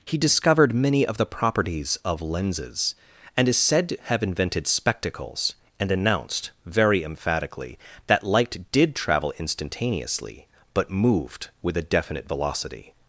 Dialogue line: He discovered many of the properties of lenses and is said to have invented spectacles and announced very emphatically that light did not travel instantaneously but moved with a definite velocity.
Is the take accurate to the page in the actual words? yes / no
no